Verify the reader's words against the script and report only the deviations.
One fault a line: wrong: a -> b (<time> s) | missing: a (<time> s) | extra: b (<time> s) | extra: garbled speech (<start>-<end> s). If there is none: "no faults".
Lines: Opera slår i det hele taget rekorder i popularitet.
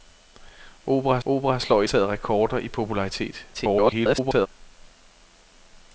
extra: opera (1.2 s)
missing: det hele (1.9 s)
extra: garbled speech (3.5-4.5 s)